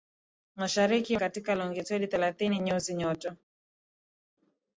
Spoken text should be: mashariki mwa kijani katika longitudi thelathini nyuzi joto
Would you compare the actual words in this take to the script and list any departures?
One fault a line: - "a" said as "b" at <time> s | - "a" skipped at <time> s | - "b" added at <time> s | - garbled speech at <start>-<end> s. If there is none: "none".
- "mwa kijani" skipped at 1.2 s